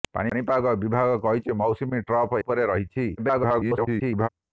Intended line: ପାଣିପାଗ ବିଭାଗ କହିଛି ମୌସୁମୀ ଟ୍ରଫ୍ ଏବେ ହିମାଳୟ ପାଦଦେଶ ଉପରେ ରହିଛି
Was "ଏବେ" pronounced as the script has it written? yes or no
no